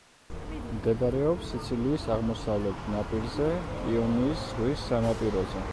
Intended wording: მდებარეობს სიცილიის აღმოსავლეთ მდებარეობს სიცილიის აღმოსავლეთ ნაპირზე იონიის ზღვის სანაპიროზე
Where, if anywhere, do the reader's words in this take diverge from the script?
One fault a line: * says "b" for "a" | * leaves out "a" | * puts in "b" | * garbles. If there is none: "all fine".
* leaves out "მდებარეობს სიცილიის აღმოსავლეთ"